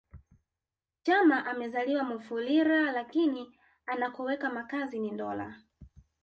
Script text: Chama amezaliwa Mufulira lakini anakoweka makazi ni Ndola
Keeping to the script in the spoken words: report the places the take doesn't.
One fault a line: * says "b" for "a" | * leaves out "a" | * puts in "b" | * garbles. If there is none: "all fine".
all fine